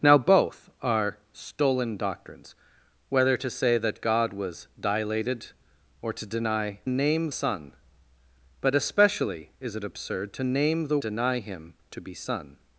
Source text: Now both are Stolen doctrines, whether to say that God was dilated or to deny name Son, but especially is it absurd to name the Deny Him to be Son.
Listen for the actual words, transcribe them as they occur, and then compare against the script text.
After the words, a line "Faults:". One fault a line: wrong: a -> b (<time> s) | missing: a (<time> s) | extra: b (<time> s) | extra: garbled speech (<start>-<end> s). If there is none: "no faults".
Now both are Stolen doctrines, whether to say that God was dilated or to deny name Son, but especially is it absurd to name the Deny Him to be Son.
Faults:
no faults